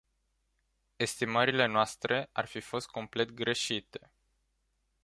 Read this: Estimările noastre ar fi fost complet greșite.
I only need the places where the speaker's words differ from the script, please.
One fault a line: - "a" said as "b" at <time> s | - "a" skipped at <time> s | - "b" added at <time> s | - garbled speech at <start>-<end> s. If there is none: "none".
none